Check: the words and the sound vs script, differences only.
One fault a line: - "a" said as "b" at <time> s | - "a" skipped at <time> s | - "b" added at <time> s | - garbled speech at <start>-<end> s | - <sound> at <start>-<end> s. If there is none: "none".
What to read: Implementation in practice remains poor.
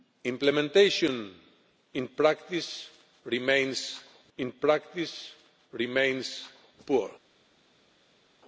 - "in practice remains" added at 4.4 s